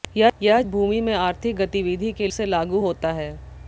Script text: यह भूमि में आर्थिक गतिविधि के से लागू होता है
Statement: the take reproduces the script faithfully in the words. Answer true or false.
true